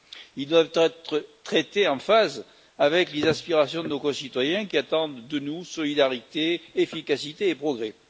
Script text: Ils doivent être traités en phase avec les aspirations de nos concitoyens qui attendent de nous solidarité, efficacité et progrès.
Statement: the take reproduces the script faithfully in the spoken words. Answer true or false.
true